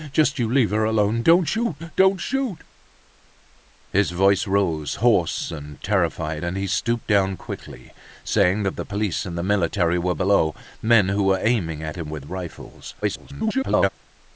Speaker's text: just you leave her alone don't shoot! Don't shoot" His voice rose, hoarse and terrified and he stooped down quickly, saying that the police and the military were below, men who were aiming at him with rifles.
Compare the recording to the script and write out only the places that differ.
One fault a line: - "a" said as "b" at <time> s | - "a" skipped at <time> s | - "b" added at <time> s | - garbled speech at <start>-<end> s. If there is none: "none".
- garbled speech at 13.0-13.9 s